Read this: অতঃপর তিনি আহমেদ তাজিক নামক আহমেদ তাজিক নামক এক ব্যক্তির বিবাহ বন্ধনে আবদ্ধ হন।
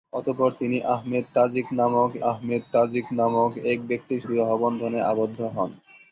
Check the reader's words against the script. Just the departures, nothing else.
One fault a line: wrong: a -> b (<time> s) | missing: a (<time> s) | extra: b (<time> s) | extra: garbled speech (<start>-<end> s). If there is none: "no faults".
no faults